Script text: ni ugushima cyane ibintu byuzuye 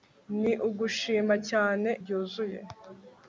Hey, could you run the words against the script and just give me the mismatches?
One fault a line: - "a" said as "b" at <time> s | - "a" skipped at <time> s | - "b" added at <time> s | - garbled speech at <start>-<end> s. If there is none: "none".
- "ibintu" skipped at 1.9 s